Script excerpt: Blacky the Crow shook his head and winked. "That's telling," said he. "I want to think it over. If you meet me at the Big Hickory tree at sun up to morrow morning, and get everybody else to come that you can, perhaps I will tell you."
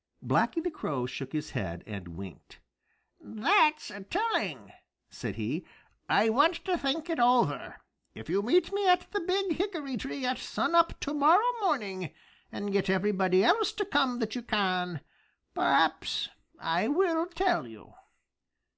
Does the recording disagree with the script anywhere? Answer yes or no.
no